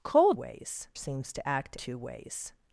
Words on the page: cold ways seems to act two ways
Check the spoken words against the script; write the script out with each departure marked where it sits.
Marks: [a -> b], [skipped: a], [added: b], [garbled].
cold ways seems to act two ways